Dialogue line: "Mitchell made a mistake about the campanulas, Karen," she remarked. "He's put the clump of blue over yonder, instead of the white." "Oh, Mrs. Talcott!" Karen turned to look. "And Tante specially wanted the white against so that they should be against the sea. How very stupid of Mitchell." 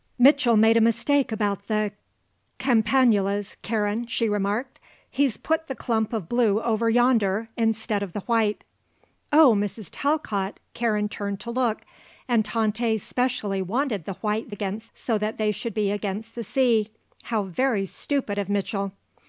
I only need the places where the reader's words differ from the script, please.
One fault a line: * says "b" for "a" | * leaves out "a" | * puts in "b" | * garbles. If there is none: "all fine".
all fine